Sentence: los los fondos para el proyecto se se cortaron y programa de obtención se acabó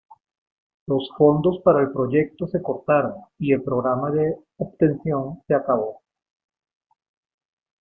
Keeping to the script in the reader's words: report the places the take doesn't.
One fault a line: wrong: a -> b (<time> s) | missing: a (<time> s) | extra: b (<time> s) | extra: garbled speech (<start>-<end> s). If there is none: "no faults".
missing: los (1.1 s)
missing: se (2.6 s)
extra: el (3.5 s)